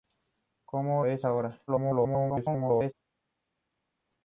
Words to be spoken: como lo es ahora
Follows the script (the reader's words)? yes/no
no